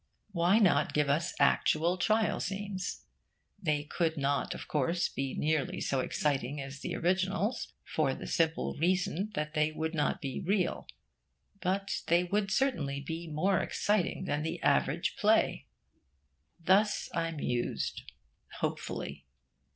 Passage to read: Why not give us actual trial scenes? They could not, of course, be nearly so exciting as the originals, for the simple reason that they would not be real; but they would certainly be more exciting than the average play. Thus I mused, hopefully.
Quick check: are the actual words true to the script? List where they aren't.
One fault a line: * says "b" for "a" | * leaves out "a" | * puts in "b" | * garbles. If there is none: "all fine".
all fine